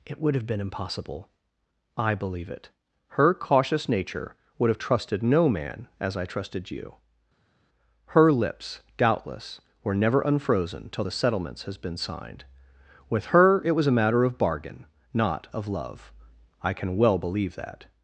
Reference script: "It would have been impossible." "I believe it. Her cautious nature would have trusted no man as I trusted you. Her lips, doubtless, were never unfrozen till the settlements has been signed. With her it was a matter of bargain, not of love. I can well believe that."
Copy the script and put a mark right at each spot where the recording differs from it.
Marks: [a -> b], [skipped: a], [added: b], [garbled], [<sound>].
"It would have been impossible." "I believe it. Her cautious nature would have trusted no man as I trusted you. Her lips, doubtless, were never unfrozen till the settlements has been signed. With her it was a matter of bargain, not of love. I can well believe that."